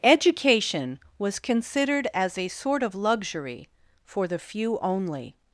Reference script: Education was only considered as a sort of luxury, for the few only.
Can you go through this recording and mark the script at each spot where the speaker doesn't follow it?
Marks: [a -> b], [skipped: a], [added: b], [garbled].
Education was [skipped: only] considered as a sort of luxury, for the few only.